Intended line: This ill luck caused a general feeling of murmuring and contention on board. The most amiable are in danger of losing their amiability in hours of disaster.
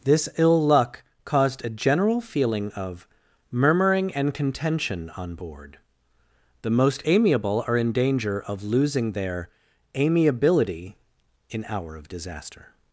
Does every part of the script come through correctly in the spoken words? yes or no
no